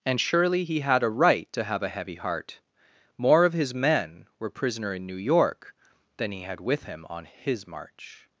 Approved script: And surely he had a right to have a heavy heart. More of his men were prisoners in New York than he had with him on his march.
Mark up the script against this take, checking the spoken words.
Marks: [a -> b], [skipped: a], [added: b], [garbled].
And surely he had a right to have a heavy heart. More of his men were [prisoners -> prisoner] in New York than he had with him on his march.